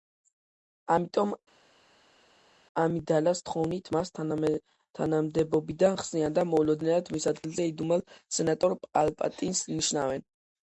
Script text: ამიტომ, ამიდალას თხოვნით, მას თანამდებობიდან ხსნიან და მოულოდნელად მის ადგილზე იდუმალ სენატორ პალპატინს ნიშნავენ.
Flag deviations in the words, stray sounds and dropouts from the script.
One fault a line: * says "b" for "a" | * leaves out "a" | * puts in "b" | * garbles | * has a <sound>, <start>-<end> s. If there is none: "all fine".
all fine